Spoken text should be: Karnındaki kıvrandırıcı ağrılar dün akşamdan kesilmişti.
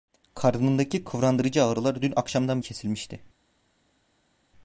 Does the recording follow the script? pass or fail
pass